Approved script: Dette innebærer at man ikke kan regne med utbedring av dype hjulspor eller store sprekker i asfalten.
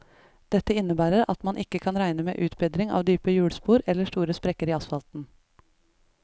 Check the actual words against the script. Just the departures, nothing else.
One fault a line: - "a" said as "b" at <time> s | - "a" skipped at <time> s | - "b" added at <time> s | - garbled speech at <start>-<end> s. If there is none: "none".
none